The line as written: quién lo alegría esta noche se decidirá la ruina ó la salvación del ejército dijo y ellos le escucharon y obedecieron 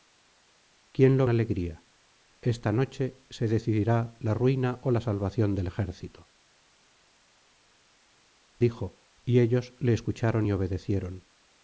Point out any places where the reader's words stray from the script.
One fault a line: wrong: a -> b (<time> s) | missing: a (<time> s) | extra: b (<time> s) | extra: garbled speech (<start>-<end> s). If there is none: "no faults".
no faults